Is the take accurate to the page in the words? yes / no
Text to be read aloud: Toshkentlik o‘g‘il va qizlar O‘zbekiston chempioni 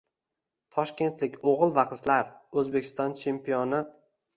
yes